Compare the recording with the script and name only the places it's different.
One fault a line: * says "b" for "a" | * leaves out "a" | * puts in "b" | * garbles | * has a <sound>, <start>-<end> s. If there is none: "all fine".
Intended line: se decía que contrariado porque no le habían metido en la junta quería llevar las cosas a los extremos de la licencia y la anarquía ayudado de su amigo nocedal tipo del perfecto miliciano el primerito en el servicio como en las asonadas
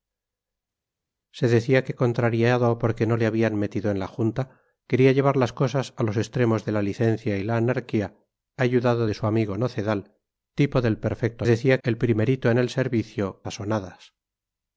* says "decía" for "miliciano"
* leaves out "como en las"